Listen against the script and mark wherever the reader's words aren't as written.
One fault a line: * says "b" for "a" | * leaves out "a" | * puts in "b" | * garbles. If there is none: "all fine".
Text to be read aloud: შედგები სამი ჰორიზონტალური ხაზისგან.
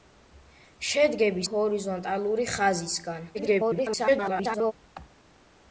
* leaves out "სამი"
* garbles